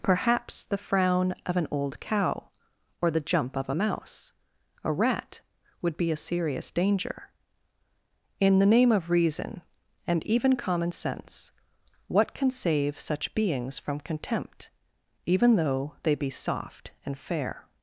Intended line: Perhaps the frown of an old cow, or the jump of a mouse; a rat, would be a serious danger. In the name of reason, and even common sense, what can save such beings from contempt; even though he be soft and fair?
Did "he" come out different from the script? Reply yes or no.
yes